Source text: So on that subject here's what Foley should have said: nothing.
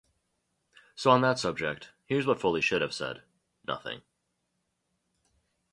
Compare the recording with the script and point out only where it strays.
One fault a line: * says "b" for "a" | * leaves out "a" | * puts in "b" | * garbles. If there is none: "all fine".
all fine